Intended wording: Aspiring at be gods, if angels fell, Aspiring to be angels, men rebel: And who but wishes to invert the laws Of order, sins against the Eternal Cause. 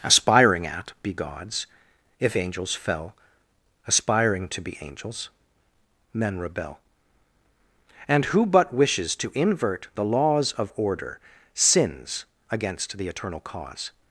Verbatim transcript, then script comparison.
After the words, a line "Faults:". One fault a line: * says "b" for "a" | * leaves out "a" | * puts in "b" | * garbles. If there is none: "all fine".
Aspiring at be gods, if angels fell, Aspiring to be angels, men rebel: And who but wishes to invert the laws Of order, sins against the Eternal Cause.
Faults:
all fine